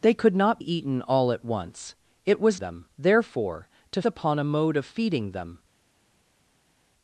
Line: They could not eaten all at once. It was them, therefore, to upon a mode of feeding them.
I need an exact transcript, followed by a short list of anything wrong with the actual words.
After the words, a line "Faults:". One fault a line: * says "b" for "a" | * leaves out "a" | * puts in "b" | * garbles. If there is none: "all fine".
They could not eaten all at once. It was them, therefore, to upon a mode of feeding them.
Faults:
all fine